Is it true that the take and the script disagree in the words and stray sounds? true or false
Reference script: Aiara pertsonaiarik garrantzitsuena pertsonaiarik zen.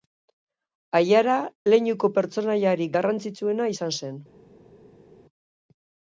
true